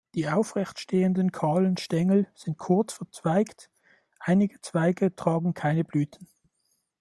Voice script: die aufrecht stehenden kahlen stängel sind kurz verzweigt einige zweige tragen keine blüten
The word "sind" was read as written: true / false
true